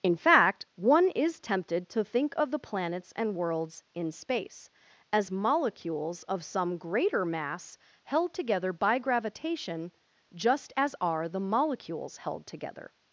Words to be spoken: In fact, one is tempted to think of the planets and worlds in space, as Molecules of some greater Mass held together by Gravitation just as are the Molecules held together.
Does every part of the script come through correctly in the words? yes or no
yes